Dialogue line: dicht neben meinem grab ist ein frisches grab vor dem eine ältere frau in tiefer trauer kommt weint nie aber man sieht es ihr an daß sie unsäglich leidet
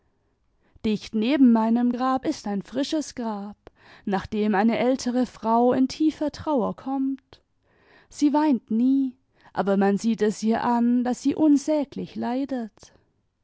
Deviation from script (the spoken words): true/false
true